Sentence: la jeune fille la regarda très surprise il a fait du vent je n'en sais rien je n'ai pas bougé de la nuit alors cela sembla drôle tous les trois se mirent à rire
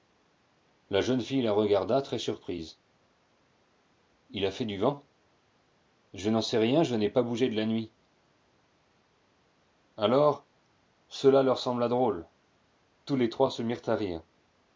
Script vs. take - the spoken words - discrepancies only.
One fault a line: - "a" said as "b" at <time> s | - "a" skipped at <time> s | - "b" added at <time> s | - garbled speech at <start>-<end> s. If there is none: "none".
- "leur" added at 11.4 s